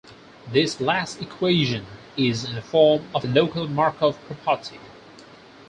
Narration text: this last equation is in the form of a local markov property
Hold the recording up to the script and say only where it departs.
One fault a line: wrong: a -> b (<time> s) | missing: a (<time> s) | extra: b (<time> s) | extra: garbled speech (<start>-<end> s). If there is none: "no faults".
no faults